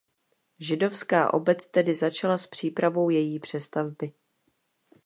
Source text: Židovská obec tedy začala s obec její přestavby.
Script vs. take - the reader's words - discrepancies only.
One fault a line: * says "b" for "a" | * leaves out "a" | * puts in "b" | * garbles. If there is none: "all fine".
* says "přípravou" for "obec"